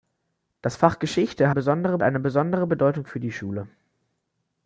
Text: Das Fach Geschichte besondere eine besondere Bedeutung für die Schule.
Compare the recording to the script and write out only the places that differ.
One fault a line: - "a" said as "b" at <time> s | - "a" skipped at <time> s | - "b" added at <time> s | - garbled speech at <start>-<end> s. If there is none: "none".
none